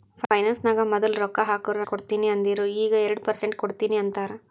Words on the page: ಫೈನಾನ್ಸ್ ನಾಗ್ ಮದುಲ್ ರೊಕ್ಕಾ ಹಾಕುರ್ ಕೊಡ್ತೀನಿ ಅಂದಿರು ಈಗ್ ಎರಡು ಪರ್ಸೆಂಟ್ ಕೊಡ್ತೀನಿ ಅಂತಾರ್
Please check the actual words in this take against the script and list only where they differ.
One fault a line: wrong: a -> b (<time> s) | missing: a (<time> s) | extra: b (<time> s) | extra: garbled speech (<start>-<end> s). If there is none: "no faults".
no faults